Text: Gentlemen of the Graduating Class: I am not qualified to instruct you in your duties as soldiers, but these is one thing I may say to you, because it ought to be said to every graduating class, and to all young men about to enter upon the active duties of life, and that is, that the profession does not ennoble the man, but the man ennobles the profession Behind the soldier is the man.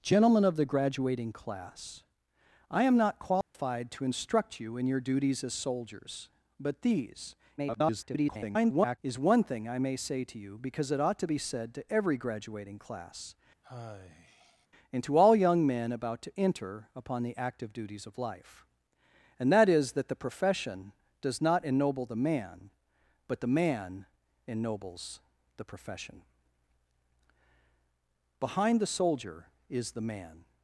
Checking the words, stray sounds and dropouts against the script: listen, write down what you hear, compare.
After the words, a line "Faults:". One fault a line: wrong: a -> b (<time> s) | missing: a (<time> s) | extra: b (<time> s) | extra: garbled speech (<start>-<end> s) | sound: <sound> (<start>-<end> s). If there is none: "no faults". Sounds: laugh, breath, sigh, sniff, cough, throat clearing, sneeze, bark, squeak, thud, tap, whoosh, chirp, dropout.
Gentlemen of the Graduating Class: I am not qualified to instruct you in your duties as soldiers, but these [garbled] is one thing I may say to you, because it ought to be said to every graduating class, and to all young men about to enter upon the active duties of life, and that is, that the profession does not ennoble the man, but the man ennobles the profession Behind the soldier is the man.
Faults:
sound: dropout (3.4-3.5 s)
extra: garbled speech (7.6-9.0 s)
sound: sigh (13.6-14.7 s)